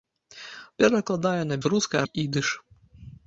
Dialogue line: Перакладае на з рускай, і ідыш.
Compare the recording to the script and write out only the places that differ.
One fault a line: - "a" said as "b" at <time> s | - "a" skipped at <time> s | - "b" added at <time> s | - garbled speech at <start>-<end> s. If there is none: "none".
none